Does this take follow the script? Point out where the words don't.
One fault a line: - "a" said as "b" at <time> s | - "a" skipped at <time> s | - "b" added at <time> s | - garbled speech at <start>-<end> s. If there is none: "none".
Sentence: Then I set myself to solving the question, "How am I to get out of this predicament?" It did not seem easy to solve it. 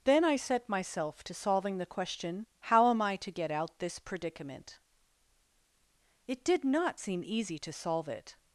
- "of" skipped at 3.8 s